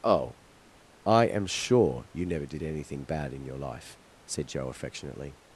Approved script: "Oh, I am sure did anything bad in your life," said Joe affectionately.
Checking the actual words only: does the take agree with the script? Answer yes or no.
no